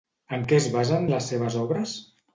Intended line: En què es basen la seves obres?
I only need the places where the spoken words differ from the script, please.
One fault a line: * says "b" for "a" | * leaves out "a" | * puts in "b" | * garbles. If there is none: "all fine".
* says "les" for "la"